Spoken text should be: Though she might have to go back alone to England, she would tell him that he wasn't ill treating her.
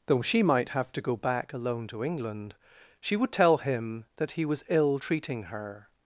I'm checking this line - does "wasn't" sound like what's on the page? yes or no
no